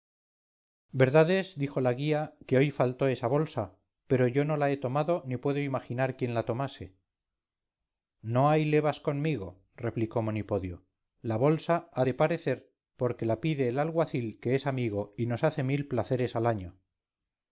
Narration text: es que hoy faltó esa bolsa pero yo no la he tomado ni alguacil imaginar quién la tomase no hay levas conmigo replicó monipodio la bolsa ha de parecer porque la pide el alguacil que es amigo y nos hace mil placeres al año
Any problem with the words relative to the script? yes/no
yes